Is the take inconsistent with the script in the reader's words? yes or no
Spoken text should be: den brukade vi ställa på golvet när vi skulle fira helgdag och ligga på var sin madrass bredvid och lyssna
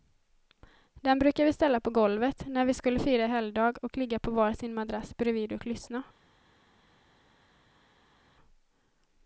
no